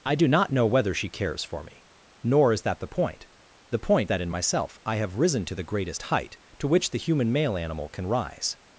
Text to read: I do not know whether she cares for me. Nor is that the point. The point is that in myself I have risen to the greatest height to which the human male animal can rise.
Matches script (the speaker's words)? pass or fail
fail